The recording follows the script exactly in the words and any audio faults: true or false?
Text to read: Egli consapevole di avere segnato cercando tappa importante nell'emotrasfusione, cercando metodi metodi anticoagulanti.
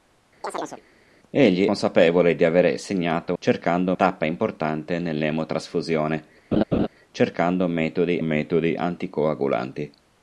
false